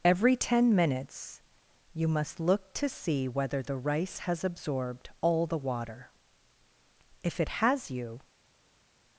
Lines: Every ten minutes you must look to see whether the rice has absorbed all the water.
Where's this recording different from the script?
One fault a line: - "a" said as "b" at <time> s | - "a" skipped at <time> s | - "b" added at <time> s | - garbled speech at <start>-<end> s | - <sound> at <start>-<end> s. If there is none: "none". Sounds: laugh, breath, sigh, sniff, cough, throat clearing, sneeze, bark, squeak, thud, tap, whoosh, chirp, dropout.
- "If it has you" added at 7.2 s